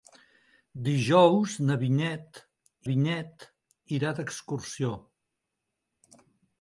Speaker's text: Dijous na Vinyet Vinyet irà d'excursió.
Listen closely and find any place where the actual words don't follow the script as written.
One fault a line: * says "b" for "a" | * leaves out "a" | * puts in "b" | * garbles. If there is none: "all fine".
all fine